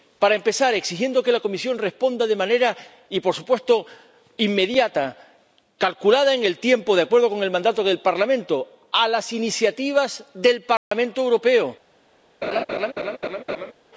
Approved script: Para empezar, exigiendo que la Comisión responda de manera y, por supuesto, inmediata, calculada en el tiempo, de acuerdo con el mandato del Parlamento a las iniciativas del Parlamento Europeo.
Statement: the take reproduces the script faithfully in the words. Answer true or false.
true